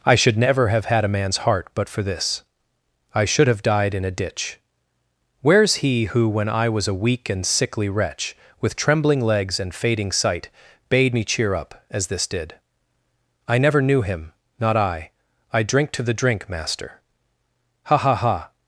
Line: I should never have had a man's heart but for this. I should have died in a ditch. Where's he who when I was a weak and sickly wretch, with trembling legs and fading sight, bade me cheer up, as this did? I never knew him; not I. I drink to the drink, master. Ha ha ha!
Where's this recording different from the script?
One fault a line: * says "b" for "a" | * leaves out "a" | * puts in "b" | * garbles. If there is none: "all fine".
all fine